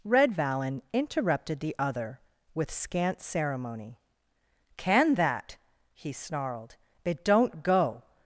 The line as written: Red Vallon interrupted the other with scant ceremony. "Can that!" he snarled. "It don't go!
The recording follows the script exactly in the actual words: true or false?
true